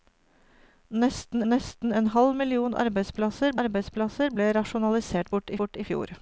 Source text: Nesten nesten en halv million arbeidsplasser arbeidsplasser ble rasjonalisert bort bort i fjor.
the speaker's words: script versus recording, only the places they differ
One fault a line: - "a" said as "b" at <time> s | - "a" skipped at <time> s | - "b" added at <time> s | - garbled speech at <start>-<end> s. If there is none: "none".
none